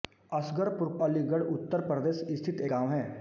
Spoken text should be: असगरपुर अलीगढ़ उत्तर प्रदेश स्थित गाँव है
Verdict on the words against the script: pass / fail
pass